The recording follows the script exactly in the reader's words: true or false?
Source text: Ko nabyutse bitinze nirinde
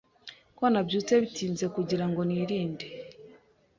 false